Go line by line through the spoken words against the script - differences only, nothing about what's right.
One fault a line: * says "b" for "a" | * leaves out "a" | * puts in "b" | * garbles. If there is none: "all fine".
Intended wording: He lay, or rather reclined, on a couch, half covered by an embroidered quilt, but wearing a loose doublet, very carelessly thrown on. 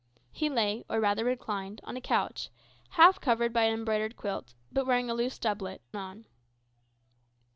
* leaves out "very carelessly thrown"